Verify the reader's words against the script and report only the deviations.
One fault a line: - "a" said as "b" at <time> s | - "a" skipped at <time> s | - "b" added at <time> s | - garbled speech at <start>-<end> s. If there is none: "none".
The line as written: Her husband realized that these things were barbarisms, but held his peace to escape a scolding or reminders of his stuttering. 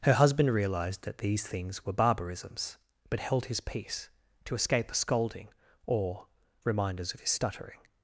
none